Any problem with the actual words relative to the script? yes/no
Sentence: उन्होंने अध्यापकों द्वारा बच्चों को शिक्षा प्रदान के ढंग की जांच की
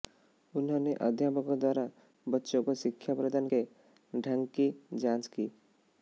no